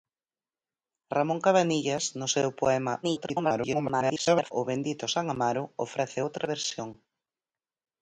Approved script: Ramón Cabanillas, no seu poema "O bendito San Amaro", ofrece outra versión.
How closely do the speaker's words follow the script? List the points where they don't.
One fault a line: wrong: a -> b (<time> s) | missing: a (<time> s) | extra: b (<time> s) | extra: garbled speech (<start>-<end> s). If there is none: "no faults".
extra: garbled speech (3.0-4.5 s)